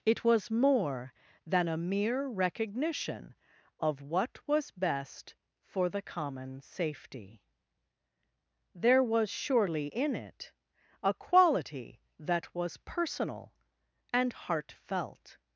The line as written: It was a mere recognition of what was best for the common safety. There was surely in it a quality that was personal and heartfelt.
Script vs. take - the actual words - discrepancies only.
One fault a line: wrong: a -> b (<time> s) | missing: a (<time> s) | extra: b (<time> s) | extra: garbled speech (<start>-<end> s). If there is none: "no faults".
extra: more than (0.5 s)